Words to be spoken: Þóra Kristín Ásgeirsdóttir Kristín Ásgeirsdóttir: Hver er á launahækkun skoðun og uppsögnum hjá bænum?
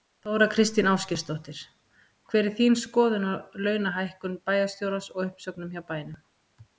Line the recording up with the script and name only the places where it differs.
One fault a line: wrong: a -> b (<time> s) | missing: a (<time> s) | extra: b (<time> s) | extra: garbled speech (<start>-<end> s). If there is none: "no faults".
wrong: Kristín Ásgeirsdóttir Hver er -> Hver er þín skoðun (2.3 s)
wrong: skoðun -> bæjarstjórans (4.5 s)